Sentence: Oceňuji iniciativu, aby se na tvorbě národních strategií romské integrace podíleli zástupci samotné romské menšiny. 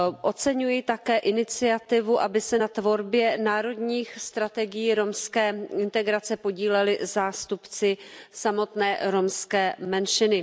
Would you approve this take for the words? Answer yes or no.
no